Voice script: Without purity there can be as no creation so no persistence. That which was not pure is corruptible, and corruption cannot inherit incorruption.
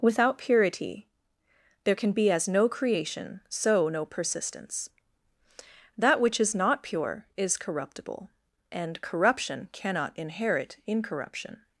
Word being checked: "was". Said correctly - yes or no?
no